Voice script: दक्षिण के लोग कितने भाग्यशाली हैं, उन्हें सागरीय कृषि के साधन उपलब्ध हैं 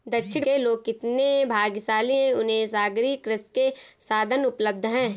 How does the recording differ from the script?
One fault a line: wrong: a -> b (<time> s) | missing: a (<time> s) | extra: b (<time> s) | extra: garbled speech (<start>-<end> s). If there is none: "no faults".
no faults